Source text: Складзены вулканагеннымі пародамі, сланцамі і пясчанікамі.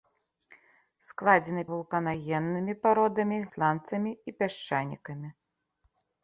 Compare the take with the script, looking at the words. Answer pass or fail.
pass